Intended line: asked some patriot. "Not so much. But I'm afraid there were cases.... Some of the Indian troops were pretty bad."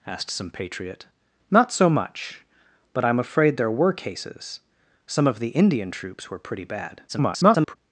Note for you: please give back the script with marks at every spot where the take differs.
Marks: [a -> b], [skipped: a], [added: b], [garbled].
asked some patriot. "Not so much. But I'm afraid there were cases.... Some of the Indian troops were pretty bad." [garbled]